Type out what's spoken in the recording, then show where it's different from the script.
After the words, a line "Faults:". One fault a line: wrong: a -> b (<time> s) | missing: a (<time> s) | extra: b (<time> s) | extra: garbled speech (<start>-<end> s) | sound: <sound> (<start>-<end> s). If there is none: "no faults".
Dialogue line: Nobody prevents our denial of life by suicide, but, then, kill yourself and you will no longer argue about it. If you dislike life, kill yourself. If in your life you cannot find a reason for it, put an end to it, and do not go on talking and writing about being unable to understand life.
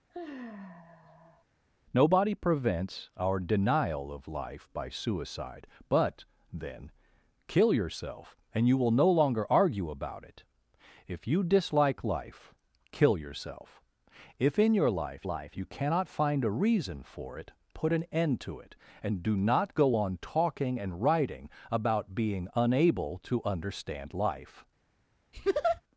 Nobody prevents our denial of life by suicide, but, then, kill yourself and you will no longer argue about it. If you dislike life, kill yourself. If in your life life you cannot find a reason for it, put an end to it, and do not go on talking and writing about being unable to understand life.
Faults:
sound: sigh (0.1-1.4 s)
extra: life (15.2 s)
sound: laugh (25.3-25.8 s)